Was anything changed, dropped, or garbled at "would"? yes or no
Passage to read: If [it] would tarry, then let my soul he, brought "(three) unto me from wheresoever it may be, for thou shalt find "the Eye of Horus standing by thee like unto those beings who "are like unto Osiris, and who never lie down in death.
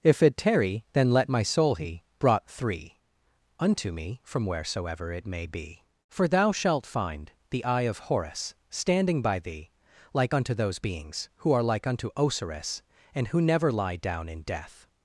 yes